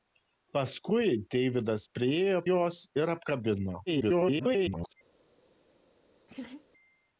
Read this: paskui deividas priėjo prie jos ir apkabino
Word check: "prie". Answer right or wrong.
wrong